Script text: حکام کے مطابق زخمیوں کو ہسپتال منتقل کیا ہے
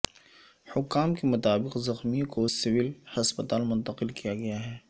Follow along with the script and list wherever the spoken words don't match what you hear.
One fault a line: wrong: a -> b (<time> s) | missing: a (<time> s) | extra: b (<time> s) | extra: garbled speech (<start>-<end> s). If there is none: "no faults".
extra: سول (2.5 s)
extra: گیا (4.3 s)